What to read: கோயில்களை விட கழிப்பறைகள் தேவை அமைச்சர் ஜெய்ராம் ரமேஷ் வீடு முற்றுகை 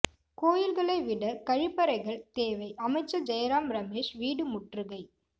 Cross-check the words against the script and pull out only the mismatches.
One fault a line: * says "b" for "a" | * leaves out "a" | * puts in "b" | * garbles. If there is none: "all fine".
all fine